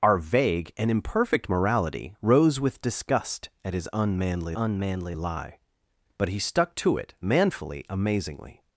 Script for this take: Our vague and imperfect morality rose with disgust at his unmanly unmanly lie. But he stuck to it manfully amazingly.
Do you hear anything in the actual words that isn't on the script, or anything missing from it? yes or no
no